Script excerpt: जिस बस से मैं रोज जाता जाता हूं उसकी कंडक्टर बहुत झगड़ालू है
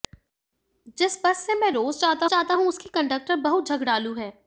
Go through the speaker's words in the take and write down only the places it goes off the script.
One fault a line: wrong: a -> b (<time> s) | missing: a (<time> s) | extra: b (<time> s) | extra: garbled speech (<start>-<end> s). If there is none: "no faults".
no faults